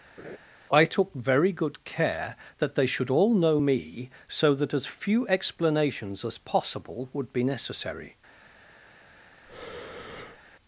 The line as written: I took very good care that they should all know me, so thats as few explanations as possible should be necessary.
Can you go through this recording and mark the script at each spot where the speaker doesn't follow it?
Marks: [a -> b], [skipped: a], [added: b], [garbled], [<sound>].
[laugh] I took very good care that they should all know me, so [thats -> that] as few explanations as possible [should -> would] be necessary. [breath]